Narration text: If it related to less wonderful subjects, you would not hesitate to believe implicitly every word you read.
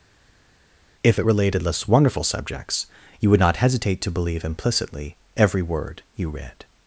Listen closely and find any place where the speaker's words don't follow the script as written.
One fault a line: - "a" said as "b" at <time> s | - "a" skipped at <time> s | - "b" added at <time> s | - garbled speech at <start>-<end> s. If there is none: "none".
- "to" skipped at 1.6 s